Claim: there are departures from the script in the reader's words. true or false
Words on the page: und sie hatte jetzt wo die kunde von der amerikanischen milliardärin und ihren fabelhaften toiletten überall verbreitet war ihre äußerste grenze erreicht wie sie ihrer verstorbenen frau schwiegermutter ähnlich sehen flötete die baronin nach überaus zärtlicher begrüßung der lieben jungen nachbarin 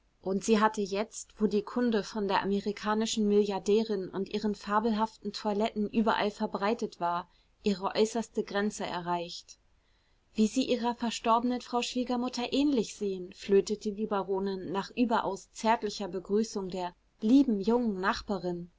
false